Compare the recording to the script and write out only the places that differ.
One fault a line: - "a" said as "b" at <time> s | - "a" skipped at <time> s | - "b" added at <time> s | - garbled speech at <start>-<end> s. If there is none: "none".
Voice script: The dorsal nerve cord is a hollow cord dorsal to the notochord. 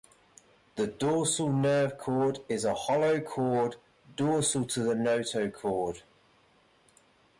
none